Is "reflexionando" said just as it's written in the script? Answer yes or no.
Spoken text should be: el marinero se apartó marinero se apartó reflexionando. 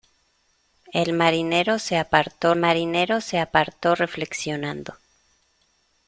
yes